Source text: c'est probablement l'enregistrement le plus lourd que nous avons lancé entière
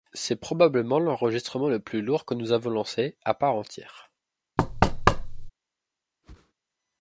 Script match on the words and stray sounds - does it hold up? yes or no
no